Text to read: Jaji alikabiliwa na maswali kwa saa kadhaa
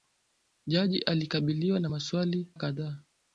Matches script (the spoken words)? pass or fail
fail